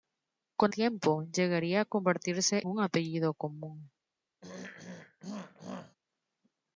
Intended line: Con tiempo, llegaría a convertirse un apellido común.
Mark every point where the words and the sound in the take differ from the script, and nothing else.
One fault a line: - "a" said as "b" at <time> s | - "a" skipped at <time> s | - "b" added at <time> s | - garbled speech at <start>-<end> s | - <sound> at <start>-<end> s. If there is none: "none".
- throat clearing at 4.4-6.0 s